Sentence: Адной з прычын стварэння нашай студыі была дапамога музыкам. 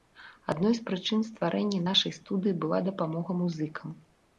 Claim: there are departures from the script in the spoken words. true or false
false